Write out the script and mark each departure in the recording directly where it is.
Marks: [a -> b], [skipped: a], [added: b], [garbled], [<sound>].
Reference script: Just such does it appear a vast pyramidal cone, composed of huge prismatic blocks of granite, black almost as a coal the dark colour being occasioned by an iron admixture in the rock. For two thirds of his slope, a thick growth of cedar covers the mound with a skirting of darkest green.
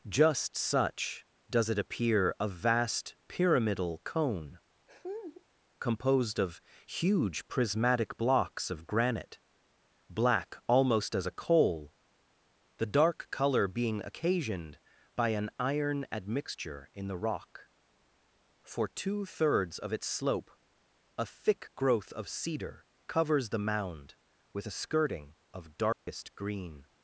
Just such does it appear a vast pyramidal cone, [laugh] composed of huge prismatic blocks of granite, black almost as a coal the dark colour being occasioned by an iron admixture in the rock. For two thirds of [his -> its] slope, a thick growth of cedar covers the mound with a skirting of darkest [dropout] green.